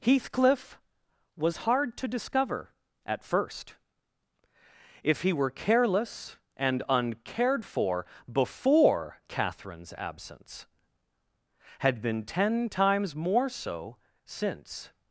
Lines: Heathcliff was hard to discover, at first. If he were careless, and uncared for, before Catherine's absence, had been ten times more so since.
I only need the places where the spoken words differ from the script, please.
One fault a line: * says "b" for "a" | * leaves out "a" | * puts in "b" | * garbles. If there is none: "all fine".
all fine